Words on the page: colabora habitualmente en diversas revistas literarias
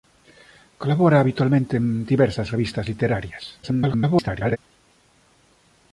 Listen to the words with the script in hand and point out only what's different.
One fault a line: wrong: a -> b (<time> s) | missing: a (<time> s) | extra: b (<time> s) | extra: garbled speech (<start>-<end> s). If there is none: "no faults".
extra: garbled speech (3.6-4.6 s)